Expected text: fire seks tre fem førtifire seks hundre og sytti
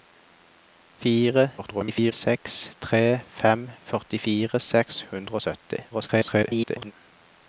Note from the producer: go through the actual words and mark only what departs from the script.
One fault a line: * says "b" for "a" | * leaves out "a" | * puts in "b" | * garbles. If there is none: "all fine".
* garbles
* garbles